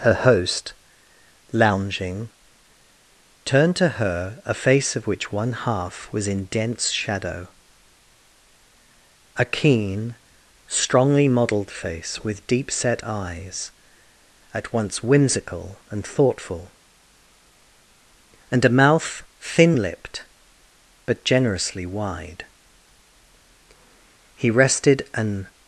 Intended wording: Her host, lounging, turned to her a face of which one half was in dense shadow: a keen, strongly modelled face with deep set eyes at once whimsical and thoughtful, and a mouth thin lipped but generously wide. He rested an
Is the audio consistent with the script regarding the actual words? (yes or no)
yes